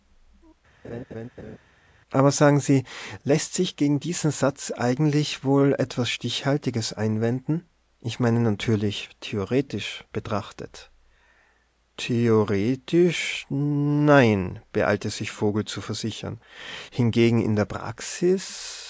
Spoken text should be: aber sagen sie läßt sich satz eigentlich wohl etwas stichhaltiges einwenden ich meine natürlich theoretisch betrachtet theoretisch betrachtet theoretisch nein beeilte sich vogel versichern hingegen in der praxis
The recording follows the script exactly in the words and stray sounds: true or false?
false